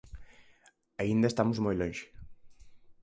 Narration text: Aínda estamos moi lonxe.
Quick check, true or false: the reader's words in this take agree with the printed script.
true